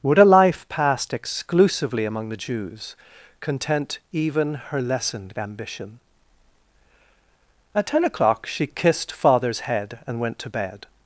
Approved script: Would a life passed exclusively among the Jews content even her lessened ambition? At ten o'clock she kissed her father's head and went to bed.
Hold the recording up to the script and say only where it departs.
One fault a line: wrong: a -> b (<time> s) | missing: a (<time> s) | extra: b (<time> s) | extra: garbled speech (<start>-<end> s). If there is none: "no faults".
missing: her (9.1 s)